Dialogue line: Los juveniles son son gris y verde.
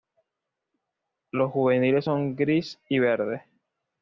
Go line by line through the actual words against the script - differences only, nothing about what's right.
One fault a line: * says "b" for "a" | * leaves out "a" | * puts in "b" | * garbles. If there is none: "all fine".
* leaves out "son"